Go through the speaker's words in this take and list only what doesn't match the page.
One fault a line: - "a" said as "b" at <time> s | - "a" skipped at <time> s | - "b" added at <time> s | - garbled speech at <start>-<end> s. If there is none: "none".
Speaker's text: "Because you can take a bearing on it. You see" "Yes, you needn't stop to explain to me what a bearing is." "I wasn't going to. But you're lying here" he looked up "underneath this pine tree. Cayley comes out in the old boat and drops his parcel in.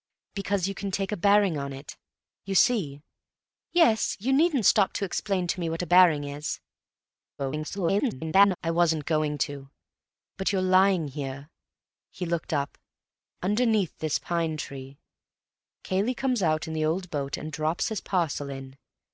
- garbled speech at 7.4-8.6 s